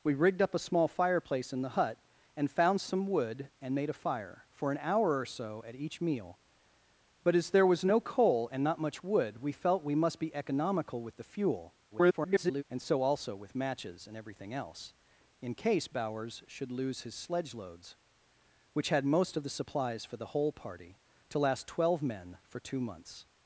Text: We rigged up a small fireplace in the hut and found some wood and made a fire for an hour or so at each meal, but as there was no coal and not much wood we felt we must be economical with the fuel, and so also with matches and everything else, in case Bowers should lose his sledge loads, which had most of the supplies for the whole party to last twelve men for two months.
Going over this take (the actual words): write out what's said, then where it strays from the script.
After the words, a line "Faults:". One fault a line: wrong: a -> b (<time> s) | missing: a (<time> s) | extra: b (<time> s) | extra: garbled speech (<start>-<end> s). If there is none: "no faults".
We rigged up a small fireplace in the hut and found some wood and made a fire for an hour or so at each meal, but as there was no coal and not much wood we felt we must be economical with the fuel, [garbled] and so also with matches and everything else, in case Bowers should lose his sledge loads, which had most of the supplies for the whole party to last twelve men for two months.
Faults:
extra: garbled speech (11.9-12.6 s)